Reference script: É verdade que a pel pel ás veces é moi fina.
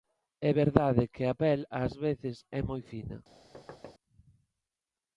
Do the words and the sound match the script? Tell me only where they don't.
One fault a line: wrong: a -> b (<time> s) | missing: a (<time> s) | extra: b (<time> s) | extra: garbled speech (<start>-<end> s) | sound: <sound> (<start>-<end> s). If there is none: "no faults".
missing: pel (1.6 s)
sound: thud (3.5-3.9 s)